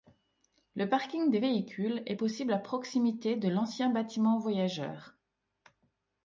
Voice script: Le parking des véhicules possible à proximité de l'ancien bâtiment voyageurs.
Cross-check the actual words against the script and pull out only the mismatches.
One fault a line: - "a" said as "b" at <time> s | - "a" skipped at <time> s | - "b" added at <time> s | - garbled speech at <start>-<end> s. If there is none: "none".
- "est" added at 2.0 s